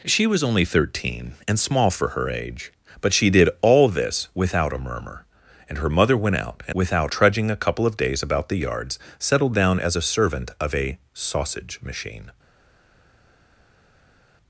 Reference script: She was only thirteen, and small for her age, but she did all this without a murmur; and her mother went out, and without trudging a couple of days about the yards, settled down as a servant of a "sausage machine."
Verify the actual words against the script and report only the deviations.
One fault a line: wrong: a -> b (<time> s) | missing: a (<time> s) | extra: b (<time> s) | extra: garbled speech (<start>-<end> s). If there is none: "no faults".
no faults